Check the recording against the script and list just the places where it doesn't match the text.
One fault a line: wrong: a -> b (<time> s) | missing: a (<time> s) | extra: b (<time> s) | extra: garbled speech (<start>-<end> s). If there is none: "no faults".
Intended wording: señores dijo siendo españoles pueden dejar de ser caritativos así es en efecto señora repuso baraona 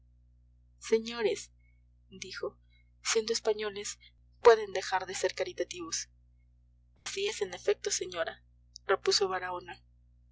no faults